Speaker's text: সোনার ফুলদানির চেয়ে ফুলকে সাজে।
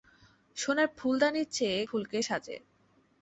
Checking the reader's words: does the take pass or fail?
pass